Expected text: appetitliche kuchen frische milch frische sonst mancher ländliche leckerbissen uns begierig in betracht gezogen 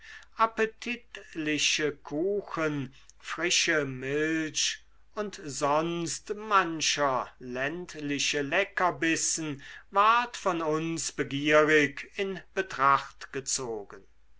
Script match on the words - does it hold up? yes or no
no